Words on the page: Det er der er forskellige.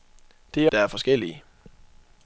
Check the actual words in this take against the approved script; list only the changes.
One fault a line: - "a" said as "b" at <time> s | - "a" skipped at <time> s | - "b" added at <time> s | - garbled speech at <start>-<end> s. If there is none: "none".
none